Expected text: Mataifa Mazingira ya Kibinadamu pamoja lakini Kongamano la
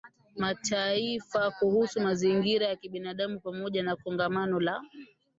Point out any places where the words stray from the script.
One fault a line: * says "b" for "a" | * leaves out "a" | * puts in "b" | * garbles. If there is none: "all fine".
* puts in "Kuhusu"
* says "na" for "lakini"